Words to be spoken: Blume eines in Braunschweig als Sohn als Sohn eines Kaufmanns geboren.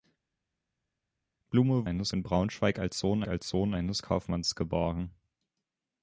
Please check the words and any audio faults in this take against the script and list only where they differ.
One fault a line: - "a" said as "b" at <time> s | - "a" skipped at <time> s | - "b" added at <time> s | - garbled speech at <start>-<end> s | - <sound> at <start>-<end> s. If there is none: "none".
none